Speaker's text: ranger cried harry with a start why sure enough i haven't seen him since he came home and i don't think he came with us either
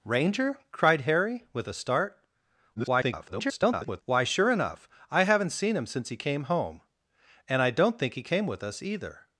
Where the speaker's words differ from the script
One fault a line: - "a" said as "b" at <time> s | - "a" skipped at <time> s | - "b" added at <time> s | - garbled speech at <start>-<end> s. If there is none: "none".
- garbled speech at 2.7-4.0 s